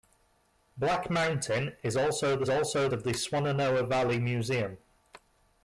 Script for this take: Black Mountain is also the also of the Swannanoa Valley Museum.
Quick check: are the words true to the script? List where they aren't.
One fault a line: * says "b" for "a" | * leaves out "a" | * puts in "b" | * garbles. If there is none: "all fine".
all fine